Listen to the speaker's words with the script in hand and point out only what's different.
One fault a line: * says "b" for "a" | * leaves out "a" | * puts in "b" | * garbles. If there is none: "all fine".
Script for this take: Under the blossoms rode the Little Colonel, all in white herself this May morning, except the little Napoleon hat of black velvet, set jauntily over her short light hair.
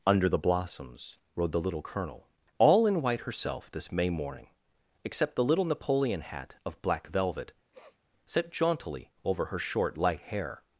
all fine